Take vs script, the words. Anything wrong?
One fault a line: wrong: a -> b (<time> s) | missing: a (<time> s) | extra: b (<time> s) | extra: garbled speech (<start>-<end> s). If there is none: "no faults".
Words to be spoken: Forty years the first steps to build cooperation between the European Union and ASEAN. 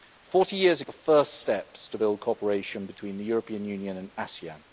no faults